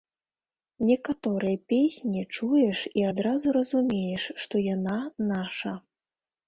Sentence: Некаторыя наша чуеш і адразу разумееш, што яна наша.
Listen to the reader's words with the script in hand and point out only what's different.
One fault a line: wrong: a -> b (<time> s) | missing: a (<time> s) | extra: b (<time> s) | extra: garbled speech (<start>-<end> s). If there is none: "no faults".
wrong: наша -> песні (1.7 s)